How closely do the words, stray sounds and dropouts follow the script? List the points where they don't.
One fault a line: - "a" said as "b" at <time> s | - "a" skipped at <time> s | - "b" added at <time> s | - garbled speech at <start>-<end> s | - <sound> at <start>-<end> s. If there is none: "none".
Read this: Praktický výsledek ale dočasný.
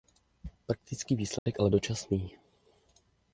- dropout at 1.4-1.5 s